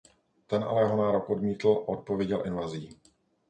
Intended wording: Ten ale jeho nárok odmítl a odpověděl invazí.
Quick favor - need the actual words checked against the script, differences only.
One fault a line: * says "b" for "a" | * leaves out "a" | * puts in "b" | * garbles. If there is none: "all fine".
all fine